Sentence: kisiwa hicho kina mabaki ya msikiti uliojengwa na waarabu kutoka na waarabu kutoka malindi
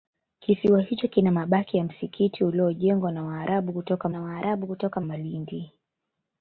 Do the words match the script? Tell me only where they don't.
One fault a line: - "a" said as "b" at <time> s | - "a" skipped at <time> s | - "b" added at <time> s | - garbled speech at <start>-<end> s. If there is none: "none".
none